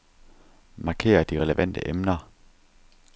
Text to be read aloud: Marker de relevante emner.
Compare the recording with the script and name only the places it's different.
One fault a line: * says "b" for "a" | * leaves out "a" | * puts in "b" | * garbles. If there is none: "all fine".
all fine